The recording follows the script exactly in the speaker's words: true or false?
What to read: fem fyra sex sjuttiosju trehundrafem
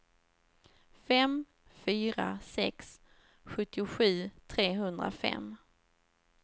true